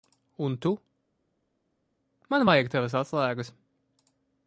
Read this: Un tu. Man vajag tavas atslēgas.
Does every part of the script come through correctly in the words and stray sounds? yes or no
yes